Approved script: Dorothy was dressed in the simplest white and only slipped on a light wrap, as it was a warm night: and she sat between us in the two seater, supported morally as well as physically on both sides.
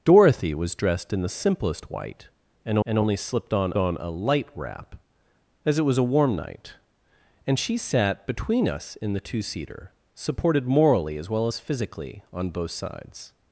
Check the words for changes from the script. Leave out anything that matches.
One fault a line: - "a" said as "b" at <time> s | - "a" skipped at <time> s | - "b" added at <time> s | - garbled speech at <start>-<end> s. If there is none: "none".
- "and" added at 2.9 s
- "on" added at 3.8 s